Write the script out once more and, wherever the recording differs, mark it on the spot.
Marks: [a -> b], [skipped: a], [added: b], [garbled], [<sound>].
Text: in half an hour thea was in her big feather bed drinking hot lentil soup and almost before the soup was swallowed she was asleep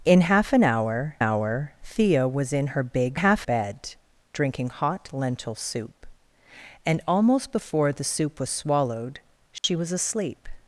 in half an hour [added: hour] thea was in her big [feather -> half] bed drinking hot lentil soup and almost before the soup was swallowed she [dropout] was asleep